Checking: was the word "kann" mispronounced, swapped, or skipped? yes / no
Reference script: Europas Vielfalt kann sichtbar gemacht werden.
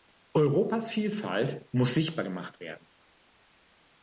yes